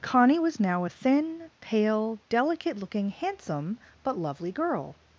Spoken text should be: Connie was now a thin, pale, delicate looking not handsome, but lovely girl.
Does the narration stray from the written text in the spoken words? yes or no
yes